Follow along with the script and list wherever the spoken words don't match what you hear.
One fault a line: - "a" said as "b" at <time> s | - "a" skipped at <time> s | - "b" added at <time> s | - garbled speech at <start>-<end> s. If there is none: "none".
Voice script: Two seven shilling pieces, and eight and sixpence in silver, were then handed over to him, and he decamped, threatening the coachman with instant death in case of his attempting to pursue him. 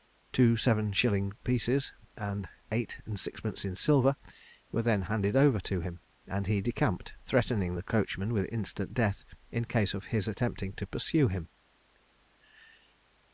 none